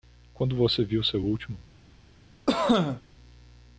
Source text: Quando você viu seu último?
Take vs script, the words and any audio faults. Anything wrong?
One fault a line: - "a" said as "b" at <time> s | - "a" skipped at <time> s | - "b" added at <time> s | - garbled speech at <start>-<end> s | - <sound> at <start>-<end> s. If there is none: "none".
- cough at 2.5-3.0 s